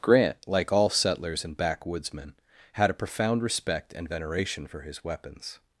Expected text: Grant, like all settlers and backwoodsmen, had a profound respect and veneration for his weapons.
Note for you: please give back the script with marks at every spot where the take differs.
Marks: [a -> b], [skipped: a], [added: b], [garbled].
Grant, like all settlers and backwoodsmen, had a profound respect and veneration for his weapons.